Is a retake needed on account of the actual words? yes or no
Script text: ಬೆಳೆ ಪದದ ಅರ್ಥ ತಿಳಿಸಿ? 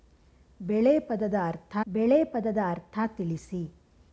yes